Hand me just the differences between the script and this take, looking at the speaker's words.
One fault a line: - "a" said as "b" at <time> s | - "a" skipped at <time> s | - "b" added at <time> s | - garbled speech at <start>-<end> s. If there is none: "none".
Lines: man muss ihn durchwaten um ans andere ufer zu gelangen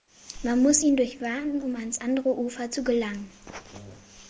none